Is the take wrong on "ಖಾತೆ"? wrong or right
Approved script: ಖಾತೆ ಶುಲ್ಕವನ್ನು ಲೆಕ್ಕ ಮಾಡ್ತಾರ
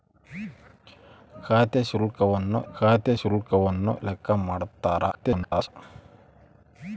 right